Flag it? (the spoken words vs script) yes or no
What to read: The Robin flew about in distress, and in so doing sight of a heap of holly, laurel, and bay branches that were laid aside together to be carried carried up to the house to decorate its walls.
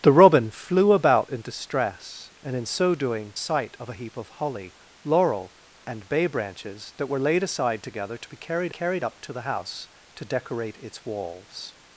no